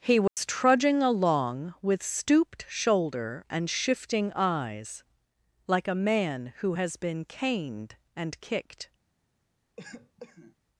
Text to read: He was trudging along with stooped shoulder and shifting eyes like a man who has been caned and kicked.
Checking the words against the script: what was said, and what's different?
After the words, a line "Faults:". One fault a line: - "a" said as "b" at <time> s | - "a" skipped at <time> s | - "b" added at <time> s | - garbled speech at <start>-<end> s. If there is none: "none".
He was trudging along with stooped shoulder and shifting eyes like a man who has been caned and kicked.
Faults:
none